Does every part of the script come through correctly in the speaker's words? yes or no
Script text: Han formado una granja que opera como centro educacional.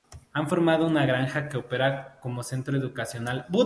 yes